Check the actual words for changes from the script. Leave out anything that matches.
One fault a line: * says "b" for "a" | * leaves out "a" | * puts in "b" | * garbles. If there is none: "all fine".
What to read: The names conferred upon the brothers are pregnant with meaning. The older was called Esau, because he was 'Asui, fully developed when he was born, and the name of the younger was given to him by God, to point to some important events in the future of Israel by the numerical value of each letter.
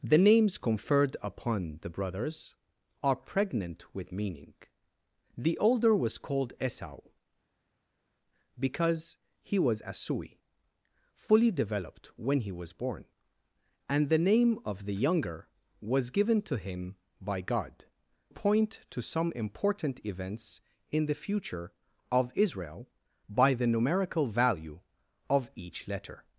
* leaves out "to"